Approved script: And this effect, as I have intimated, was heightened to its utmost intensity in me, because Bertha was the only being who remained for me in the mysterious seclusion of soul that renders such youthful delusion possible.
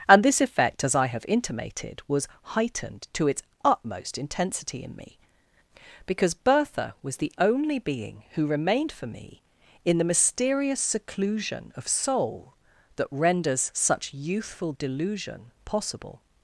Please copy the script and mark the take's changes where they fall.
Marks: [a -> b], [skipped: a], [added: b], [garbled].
And this effect, as I have intimated, was heightened to its utmost intensity in me, because Bertha was the only being who remained for me in the mysterious seclusion of soul that renders such youthful delusion possible.